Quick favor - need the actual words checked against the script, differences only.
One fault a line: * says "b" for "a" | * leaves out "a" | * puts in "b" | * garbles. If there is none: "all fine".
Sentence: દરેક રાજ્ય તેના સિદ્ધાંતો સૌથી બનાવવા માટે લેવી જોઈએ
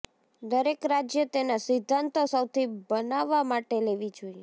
all fine